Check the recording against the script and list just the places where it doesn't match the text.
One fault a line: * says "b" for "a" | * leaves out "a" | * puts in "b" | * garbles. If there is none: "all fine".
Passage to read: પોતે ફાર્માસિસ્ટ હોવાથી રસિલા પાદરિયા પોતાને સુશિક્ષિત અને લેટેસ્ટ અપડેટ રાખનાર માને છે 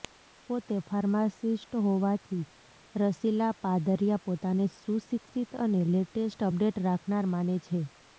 all fine